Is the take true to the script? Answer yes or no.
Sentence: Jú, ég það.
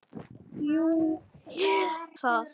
yes